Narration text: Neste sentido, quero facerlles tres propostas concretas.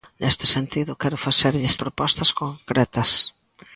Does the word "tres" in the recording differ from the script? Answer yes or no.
yes